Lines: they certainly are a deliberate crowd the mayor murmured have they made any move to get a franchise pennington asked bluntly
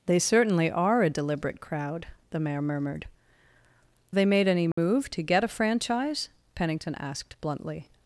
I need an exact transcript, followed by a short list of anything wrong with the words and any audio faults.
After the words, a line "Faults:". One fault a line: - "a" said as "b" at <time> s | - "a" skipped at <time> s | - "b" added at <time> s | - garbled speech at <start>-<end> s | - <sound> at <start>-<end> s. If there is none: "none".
they certainly are a deliberate crowd the mayor murmured they made any move to get a franchise pennington asked bluntly
Faults:
- "have" skipped at 3.0 s
- dropout at 4.7-4.8 s